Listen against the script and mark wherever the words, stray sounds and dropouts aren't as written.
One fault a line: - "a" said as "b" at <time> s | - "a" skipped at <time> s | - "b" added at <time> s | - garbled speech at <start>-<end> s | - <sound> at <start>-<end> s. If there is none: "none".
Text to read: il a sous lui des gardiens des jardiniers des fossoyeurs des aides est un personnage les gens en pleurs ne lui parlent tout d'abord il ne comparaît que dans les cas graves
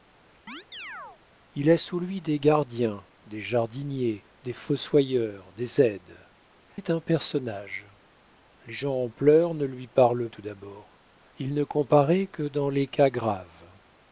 - chirp at 0.5-1.2 s